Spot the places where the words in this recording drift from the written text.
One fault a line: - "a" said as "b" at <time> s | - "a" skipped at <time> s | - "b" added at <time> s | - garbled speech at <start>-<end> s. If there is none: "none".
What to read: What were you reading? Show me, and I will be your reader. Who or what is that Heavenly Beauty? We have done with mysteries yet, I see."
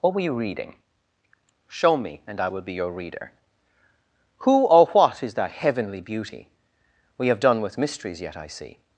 none